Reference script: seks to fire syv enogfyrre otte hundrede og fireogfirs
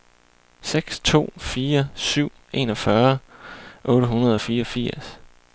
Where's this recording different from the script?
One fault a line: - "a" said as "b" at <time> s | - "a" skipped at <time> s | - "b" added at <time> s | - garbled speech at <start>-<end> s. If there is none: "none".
none